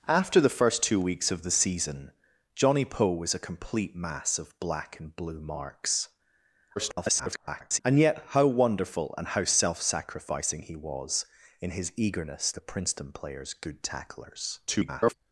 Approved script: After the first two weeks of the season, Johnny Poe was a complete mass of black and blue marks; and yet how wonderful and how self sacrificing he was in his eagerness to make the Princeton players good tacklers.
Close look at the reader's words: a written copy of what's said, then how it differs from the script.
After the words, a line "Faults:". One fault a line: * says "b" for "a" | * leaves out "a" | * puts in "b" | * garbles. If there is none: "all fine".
After the first two weeks of the season, Johnny Poe was a complete mass of black and blue marks; [garbled] and yet how wonderful and how self sacrificing he was in his eagerness the Princeton players good tacklers. [garbled]
Faults:
* garbles
* leaves out "to make"
* garbles